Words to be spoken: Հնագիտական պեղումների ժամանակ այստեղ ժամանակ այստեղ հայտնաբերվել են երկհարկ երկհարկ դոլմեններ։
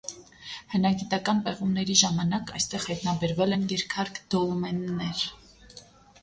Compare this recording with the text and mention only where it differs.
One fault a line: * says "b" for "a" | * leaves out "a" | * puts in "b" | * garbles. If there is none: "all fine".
* leaves out "ժամանակ այստեղ"
* leaves out "երկհարկ"